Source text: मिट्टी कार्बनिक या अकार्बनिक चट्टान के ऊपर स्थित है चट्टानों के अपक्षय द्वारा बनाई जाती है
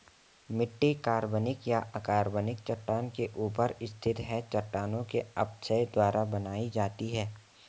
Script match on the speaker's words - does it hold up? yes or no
yes